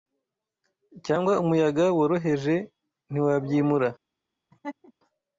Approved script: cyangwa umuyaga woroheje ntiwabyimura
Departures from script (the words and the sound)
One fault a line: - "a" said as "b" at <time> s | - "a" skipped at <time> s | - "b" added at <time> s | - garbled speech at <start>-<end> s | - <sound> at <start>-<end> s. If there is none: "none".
- laugh at 4.5-4.9 s